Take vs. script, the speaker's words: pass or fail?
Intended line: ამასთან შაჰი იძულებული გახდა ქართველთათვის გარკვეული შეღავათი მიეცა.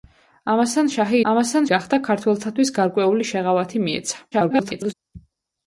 fail